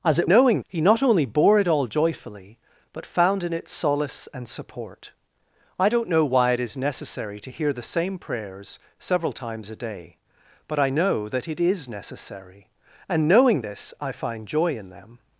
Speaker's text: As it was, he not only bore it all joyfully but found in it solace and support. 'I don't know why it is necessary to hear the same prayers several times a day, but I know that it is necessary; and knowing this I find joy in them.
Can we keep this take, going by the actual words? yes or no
no